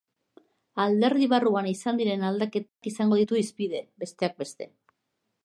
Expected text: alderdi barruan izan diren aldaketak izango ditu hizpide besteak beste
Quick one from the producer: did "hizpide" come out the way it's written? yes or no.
yes